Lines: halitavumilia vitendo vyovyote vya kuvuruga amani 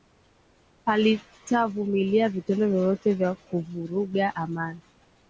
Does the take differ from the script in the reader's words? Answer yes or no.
no